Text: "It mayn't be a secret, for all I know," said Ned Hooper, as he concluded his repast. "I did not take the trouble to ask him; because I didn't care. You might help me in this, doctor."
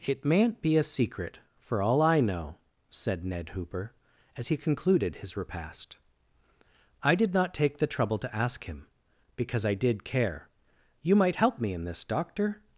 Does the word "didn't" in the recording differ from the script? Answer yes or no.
yes